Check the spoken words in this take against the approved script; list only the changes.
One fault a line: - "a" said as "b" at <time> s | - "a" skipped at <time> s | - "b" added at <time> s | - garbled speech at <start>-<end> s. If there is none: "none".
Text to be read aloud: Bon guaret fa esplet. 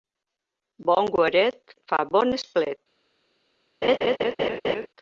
- "bon" added at 2.1 s